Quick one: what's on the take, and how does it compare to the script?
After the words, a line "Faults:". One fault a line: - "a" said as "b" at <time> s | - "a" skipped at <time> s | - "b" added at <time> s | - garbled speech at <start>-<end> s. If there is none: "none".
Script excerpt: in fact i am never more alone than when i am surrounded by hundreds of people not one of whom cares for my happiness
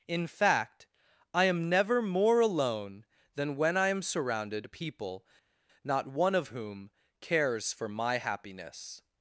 in fact i am never more alone than when i am surrounded people not one of whom cares for my happiness
Faults:
- "by hundreds of" skipped at 4.7 s